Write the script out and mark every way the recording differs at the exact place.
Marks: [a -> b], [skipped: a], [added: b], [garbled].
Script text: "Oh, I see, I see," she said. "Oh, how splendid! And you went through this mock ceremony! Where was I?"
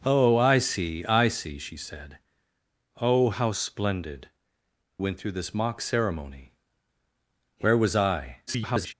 "Oh, I see, I see," she said. "Oh, how splendid! [skipped: And you] went through this mock ceremony! Where was I?" [garbled]